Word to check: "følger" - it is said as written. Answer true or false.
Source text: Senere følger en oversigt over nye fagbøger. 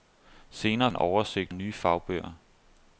false